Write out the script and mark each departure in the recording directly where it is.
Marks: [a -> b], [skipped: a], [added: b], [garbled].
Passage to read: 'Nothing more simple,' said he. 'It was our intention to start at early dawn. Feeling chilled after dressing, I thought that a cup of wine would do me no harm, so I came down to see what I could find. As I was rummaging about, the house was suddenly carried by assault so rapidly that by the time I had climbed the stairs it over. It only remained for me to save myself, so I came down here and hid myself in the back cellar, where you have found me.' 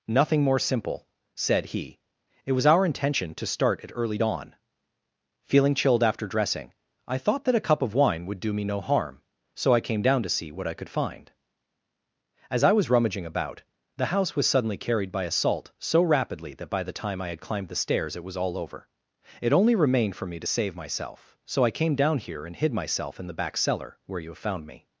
'Nothing more simple,' said he. 'It was our intention to start at early dawn. Feeling chilled after dressing, I thought that a cup of wine would do me no harm, so I came down to see what I could find. As I was rummaging about, the house was suddenly carried by assault so rapidly that by the time I had climbed the stairs it [added: was all] over. It only remained for me to save myself, so I came down here and hid myself in the back cellar, where you have found me.'